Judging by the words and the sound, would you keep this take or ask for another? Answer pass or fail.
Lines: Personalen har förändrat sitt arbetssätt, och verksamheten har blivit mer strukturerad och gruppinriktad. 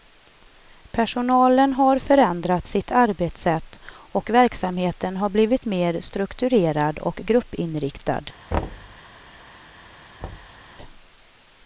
fail